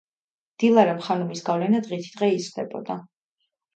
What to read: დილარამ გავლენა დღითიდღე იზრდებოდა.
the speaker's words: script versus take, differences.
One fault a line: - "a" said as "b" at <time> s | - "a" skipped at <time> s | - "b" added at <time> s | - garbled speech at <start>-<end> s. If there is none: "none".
- "ხანუმის" added at 1.1 s